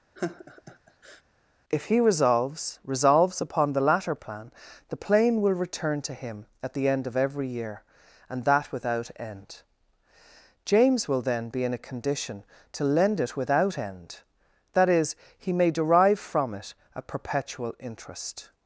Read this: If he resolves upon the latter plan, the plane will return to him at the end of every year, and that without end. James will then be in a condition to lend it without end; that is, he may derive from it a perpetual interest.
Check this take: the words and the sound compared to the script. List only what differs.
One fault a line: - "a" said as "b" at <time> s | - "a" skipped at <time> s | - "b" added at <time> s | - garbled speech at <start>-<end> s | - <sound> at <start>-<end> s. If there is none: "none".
- laugh at 0.1-1.2 s
- "resolves" added at 2.8 s